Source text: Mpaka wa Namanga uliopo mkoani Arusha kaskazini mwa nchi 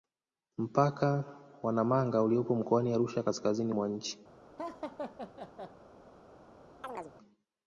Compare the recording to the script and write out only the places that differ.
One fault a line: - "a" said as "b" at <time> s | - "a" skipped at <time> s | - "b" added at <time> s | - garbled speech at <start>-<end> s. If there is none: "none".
none